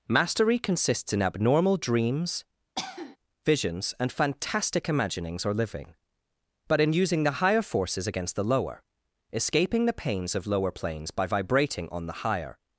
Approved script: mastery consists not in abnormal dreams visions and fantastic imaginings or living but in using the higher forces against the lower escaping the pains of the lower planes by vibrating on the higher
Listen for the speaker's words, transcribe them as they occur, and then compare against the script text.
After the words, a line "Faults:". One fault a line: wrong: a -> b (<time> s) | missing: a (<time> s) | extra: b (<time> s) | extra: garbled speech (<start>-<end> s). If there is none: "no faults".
mastery consists in abnormal dreams visions and fantastic imaginings or living but in using the higher forces against the lower escaping the pains of lower planes by vibrating on the higher
Faults:
missing: not (1.1 s)
missing: the (10.5 s)